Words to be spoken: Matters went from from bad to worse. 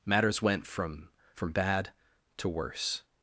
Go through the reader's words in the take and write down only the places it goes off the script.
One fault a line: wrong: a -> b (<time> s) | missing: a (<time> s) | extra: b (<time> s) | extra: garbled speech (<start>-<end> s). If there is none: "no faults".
no faults